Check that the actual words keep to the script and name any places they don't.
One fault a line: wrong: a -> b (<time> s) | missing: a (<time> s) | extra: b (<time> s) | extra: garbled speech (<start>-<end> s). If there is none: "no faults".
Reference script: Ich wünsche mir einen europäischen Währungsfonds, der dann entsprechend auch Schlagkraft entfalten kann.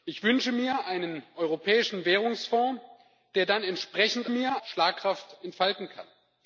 wrong: auch -> mir (4.3 s)